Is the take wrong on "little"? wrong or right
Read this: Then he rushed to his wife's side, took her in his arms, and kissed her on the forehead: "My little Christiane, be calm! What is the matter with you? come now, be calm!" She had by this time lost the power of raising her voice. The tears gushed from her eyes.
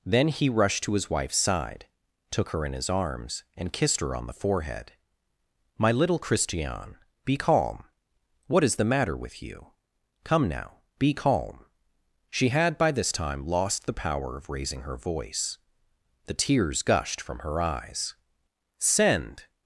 right